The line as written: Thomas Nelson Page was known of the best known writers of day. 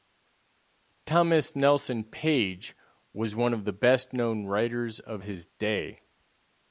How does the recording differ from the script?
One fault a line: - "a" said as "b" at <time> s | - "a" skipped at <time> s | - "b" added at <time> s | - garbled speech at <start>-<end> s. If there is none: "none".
- "known" said as "one" at 3.4 s
- "his" added at 5.2 s